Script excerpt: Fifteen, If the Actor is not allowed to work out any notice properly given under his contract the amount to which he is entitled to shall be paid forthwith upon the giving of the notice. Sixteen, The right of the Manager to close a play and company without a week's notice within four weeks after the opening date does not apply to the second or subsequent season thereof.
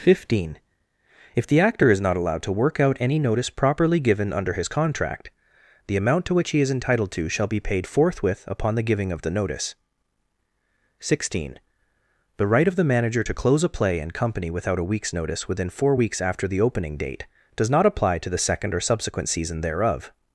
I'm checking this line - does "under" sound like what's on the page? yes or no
yes